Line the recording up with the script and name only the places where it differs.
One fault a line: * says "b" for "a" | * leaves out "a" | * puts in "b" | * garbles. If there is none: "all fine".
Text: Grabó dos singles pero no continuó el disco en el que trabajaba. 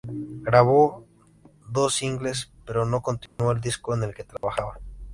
all fine